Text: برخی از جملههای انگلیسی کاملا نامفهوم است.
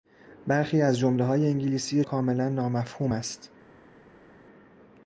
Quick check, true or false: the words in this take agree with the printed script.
true